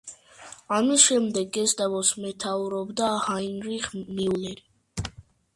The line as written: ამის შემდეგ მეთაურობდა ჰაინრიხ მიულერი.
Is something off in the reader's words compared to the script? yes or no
yes